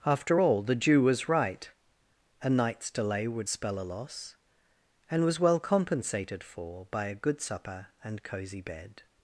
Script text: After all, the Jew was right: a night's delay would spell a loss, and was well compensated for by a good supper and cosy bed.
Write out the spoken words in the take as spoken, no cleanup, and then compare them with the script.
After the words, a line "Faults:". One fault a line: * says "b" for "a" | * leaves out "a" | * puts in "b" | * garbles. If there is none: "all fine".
After all, the Jew was right: a night's delay would spell a loss, and was well compensated for by a good supper and cosy bed.
Faults:
all fine